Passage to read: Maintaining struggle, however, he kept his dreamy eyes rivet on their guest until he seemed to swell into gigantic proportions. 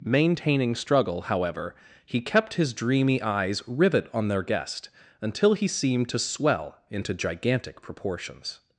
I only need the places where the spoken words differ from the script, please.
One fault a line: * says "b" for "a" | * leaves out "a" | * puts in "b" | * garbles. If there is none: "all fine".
all fine